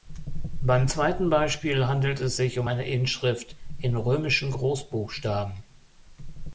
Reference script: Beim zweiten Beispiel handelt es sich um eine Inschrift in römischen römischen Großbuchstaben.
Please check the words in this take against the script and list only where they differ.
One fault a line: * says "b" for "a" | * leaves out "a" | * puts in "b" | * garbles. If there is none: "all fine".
* leaves out "römischen"